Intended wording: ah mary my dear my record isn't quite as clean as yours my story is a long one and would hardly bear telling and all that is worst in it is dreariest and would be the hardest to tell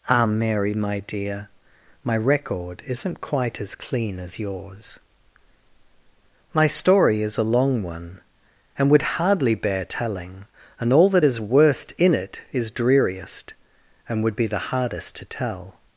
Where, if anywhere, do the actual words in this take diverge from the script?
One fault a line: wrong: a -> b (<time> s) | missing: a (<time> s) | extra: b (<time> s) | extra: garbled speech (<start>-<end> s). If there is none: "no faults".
no faults